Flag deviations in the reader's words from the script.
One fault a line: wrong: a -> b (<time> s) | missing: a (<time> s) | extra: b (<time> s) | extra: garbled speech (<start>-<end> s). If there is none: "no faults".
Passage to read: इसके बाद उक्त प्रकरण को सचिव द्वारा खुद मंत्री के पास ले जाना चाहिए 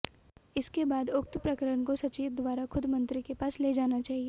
no faults